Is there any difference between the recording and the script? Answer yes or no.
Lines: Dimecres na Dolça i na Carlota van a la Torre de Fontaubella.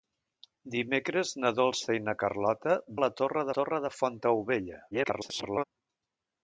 yes